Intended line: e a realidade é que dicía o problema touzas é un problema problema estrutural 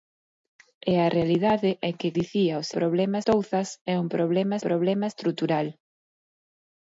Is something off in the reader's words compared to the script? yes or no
no